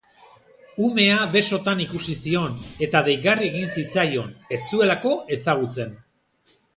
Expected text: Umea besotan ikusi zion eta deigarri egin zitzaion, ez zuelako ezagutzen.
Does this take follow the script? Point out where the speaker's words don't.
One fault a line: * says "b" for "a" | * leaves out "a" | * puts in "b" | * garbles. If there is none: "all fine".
all fine